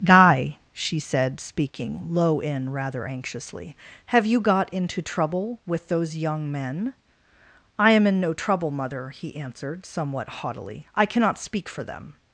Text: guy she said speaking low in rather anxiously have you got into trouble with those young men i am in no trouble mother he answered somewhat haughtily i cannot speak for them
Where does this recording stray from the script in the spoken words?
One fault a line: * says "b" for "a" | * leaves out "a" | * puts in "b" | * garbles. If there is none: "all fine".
all fine